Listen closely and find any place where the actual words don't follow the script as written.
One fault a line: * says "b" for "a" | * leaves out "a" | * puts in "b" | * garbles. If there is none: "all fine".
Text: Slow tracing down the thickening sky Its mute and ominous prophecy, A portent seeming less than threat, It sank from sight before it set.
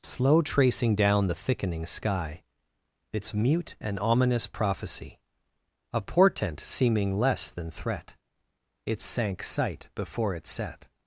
* leaves out "from"